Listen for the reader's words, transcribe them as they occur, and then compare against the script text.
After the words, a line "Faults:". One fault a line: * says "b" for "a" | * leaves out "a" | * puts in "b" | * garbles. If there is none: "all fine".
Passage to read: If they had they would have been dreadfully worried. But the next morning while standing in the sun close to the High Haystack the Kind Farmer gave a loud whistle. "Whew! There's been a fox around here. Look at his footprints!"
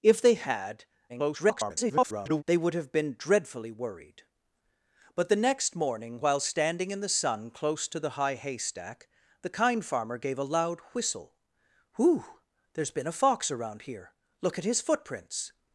If they had [garbled] they would have been dreadfully worried. But the next morning while standing in the sun close to the High Haystack the Kind Farmer gave a loud whistle. "Whew! There's been a fox around here. Look at his footprints!"
Faults:
* garbles